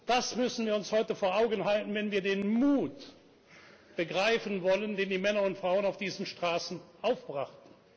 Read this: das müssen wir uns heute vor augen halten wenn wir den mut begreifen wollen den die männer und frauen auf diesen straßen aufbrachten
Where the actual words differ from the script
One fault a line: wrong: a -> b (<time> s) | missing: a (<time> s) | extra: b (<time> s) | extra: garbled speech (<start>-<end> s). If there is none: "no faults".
no faults